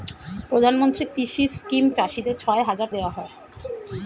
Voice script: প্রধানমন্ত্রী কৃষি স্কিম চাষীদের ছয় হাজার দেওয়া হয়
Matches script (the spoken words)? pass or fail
pass